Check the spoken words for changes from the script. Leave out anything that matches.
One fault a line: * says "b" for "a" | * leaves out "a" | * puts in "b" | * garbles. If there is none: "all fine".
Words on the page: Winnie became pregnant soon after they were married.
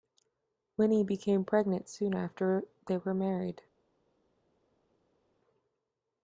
all fine